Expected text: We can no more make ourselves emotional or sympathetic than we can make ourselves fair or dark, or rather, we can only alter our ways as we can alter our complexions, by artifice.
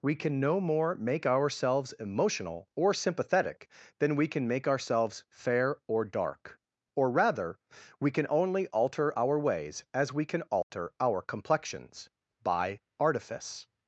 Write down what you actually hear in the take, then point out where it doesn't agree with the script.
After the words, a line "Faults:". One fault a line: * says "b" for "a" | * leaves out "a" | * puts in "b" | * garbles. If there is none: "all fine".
We can no more make ourselves emotional or sympathetic than we can make ourselves fair or dark, or rather, we can only alter our ways as we can alter our complexions, by artifice.
Faults:
all fine